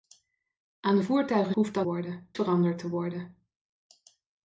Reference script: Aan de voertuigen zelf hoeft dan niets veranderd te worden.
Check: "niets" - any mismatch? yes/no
yes